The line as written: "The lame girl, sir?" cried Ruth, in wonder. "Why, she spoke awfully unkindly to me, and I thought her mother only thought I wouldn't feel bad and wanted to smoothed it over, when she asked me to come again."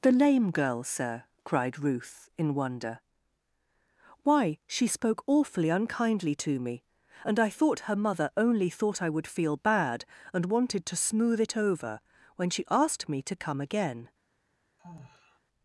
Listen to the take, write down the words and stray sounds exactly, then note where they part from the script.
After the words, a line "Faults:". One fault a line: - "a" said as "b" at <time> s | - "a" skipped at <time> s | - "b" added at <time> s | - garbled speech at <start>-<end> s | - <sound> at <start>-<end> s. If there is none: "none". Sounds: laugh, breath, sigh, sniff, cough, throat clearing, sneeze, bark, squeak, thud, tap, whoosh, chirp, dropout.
"The lame girl, sir?" cried Ruth, in wonder. "Why, she spoke awfully unkindly to me, and I thought her mother only thought I would feel bad and wanted to smooth it over, when she asked me to come again."
Faults:
- "wouldn't" said as "would" at 9.1 s
- "smoothed" said as "smooth" at 11.0 s
- sigh at 14.8-15.4 s